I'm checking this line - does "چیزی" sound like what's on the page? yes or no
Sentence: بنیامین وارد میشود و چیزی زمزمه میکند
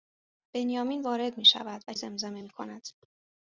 no